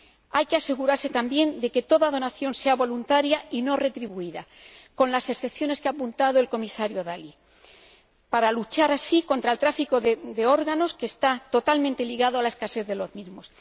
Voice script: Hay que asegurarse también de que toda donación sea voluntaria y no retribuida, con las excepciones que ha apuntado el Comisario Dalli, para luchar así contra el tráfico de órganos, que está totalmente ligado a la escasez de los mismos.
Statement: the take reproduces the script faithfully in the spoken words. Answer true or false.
true